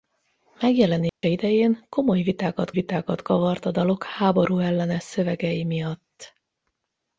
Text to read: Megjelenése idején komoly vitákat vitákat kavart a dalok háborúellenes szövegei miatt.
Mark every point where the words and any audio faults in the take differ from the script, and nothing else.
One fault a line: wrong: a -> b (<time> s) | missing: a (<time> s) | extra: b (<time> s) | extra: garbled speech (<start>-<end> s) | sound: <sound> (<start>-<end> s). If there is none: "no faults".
sound: dropout (1.1-1.2 s)